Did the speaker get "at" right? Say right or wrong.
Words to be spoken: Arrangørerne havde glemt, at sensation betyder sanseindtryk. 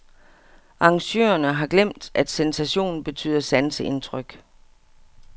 right